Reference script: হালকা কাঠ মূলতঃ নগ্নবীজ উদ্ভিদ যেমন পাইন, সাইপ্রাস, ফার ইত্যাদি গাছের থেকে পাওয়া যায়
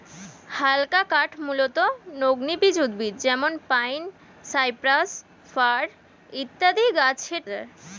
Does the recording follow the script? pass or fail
fail